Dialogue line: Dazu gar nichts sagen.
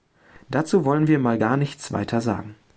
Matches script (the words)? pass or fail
fail